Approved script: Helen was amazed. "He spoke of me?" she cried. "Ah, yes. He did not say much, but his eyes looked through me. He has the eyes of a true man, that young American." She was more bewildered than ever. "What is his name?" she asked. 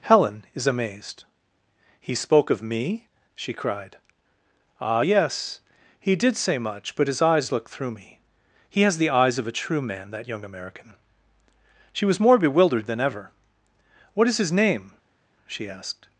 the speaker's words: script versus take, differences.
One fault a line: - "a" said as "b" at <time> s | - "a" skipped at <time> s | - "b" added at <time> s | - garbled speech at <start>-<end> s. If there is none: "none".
- "was" said as "is" at 0.5 s
- "not" skipped at 6.4 s